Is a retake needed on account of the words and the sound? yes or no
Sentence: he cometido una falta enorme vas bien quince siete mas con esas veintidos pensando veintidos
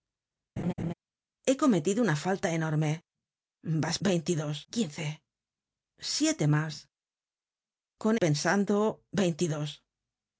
yes